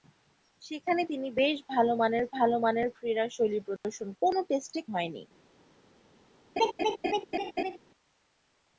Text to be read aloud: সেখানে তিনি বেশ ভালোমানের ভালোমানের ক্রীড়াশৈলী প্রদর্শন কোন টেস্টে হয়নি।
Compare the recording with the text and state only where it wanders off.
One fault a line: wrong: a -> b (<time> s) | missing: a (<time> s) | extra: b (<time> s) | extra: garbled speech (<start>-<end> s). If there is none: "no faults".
no faults